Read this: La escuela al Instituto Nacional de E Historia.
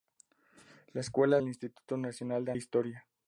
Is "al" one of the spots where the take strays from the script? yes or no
no